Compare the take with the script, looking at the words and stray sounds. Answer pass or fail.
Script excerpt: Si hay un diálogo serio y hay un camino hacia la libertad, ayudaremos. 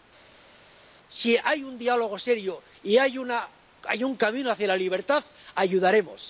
pass